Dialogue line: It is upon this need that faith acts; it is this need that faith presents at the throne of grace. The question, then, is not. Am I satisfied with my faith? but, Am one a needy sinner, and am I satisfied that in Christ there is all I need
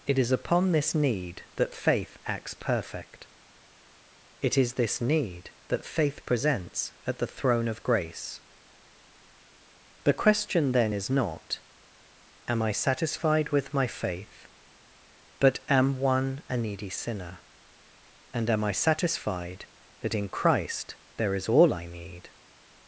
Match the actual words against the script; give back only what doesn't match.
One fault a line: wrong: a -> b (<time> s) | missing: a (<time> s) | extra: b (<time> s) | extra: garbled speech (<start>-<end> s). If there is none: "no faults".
extra: perfect (2.5 s)